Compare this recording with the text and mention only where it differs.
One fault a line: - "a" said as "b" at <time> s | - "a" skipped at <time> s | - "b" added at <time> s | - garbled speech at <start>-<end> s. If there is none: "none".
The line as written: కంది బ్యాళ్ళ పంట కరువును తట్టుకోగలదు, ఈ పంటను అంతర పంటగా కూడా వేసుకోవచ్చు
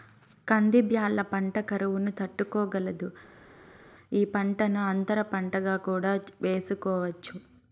none